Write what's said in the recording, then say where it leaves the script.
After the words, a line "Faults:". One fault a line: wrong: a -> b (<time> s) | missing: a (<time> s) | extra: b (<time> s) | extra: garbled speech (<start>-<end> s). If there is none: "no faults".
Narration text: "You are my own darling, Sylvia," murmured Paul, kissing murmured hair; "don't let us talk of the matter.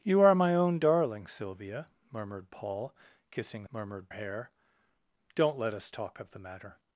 "You are my own darling, Sylvia," murmured Paul, kissing murmured hair; "don't let us talk of the matter.
Faults:
no faults